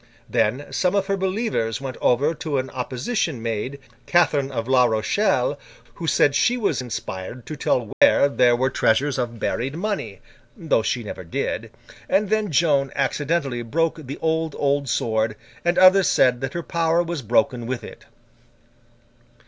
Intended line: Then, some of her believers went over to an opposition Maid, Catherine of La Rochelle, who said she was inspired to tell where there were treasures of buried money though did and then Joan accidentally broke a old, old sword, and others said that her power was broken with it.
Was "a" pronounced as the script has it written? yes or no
no